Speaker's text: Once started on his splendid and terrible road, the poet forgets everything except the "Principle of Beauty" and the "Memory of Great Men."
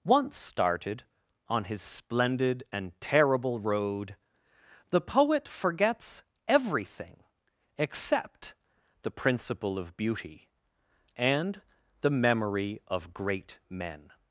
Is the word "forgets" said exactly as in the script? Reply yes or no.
yes